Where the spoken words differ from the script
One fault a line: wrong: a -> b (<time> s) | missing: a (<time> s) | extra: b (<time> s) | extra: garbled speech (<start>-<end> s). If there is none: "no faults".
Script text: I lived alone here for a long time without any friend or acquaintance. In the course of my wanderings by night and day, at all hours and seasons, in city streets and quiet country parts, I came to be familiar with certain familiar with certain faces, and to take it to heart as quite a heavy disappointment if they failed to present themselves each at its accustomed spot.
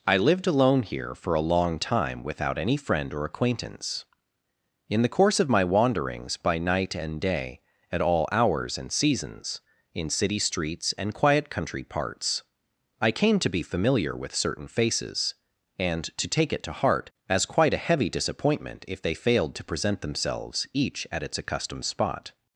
missing: familiar with certain (14.7 s)